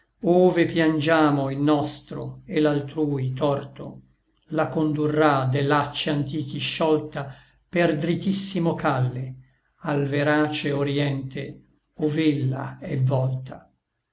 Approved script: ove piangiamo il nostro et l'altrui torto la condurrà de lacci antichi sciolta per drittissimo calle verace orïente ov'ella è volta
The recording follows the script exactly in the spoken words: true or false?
false